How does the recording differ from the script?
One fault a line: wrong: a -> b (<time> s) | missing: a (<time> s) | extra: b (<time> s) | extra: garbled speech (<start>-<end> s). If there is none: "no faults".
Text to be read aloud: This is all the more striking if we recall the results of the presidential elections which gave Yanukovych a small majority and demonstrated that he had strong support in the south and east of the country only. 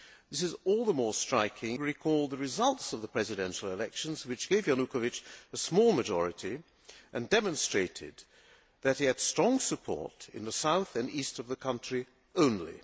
missing: if (1.8 s)